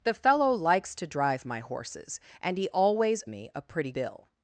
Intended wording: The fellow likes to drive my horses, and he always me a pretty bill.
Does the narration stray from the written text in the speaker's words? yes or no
no